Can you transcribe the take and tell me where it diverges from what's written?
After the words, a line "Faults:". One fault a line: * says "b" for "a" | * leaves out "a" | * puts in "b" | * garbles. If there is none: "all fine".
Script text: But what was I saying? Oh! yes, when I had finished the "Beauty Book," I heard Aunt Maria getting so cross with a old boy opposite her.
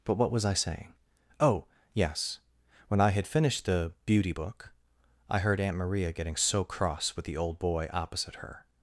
But what was I saying? Oh! yes, when I had finished the "Beauty Book," I heard Aunt Maria getting so cross with the old boy opposite her.
Faults:
* says "the" for "a"